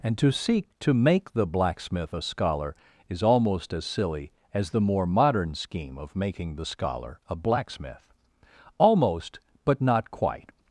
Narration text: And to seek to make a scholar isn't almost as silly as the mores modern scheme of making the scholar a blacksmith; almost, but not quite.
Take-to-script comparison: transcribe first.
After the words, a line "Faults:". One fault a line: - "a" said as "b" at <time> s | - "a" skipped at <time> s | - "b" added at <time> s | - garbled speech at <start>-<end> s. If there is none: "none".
And to seek to make the blacksmith a scholar is almost as silly as the more modern scheme of making the scholar a blacksmith; almost, but not quite.
Faults:
- "the blacksmith" added at 1.3 s
- "isn't" said as "is" at 3.1 s
- "mores" said as "more" at 4.8 s